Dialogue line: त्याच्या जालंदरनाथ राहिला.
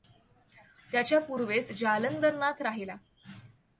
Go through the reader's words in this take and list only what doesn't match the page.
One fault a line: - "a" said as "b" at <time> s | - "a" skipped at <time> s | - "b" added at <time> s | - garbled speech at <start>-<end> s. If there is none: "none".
- "पूर्वेस" added at 1.2 s